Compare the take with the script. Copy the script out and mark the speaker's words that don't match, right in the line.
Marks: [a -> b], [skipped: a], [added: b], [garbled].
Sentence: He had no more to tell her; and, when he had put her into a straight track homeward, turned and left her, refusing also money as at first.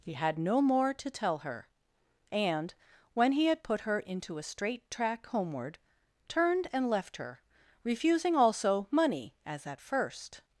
He had no more to tell her; and, when he had put her into a straight track homeward, turned and left her, refusing also money as at first.